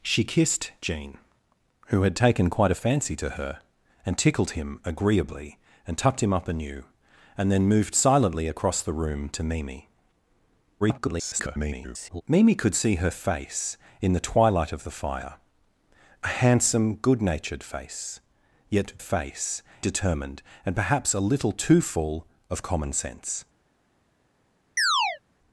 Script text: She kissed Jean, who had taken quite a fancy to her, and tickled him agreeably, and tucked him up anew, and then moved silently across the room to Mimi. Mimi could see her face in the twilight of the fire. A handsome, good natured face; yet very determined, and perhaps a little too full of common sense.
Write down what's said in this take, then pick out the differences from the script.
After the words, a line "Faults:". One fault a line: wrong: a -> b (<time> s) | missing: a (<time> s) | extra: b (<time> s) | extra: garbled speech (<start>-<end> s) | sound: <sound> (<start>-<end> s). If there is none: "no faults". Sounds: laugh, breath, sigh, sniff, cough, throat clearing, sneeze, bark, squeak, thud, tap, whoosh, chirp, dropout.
She kissed Jean, who had taken quite a fancy to her, and tickled him agreeably, and tucked him up anew, and then moved silently across the room to Mimi. [garbled] Mimi could see her face in the twilight of the fire. A handsome, good natured face; yet face determined, and perhaps a little too full of common sense.
Faults:
extra: garbled speech (10.8-12.2 s)
wrong: very -> face (19.0 s)
sound: chirp (24.8-25.2 s)